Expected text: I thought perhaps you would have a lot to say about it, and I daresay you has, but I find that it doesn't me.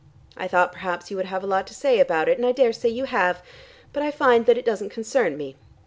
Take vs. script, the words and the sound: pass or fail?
fail